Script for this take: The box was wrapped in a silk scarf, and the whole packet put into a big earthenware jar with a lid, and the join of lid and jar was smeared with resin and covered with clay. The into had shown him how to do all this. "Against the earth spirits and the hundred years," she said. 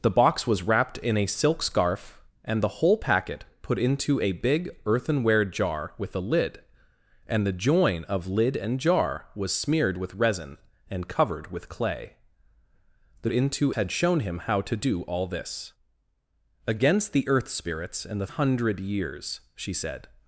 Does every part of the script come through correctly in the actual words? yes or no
yes